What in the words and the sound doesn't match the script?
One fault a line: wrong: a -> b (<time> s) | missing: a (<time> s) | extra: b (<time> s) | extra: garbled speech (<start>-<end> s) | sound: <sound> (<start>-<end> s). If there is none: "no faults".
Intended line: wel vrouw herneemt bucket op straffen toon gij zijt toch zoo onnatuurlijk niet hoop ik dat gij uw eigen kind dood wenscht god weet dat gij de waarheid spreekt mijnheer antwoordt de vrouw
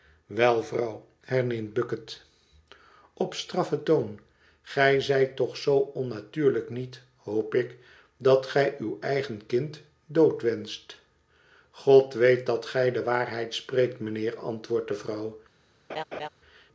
sound: laugh (15.9-16.3 s)